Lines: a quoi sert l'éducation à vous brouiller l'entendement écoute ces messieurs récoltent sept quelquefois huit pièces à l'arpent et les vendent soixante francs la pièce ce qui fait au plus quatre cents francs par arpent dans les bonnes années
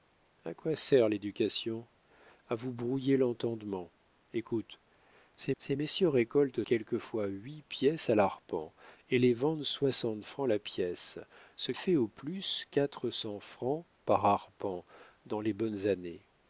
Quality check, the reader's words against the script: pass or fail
fail